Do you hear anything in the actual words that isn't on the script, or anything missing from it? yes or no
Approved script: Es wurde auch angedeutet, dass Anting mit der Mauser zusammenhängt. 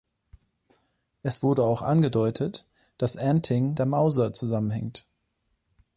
yes